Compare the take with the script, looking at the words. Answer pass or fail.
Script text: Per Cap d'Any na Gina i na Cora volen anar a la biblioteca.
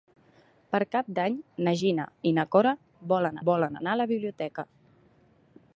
fail